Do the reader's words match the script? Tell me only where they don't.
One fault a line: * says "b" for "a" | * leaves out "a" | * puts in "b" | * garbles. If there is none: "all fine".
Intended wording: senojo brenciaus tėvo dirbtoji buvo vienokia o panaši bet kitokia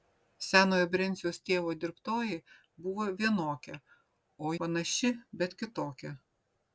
all fine